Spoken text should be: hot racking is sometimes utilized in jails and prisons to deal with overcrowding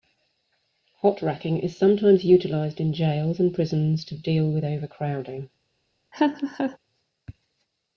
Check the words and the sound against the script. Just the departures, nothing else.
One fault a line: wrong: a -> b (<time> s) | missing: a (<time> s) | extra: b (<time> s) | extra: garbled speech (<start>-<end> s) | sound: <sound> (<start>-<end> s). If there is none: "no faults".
sound: laugh (6.1-6.8 s)